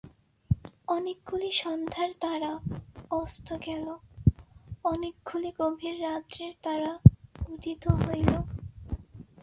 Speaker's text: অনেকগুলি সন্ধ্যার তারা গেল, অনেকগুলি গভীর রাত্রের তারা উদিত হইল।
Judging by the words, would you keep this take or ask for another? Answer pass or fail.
fail